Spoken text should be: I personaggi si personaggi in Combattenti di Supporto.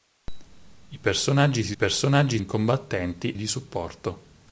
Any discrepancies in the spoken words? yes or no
no